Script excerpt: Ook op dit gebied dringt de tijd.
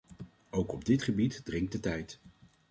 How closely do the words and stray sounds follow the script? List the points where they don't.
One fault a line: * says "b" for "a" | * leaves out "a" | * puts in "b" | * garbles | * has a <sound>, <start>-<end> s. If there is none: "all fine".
all fine